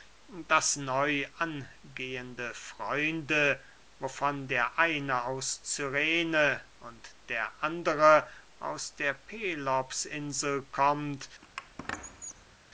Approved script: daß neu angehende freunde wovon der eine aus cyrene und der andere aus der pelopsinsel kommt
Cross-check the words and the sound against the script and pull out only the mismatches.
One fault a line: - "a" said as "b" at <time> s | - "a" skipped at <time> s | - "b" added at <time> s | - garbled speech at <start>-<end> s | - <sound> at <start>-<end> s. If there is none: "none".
- squeak at 11.4-12.6 s